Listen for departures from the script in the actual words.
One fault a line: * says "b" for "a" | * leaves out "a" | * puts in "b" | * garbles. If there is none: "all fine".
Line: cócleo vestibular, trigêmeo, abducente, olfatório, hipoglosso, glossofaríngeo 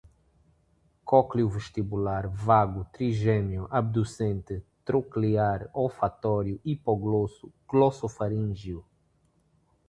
* puts in "vago"
* puts in "troclear"